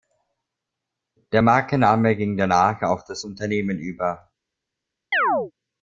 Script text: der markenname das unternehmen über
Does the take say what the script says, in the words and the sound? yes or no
no